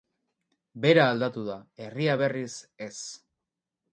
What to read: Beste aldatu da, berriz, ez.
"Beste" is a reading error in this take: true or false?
true